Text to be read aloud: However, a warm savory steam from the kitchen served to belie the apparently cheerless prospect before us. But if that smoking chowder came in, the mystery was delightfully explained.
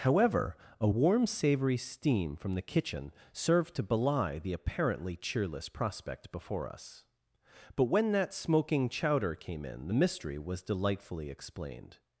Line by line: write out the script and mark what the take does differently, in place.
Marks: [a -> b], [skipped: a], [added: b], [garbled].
However, a warm savory steam from the kitchen served to belie the apparently cheerless prospect before us. But [if -> when] that smoking chowder came in, the mystery was delightfully explained.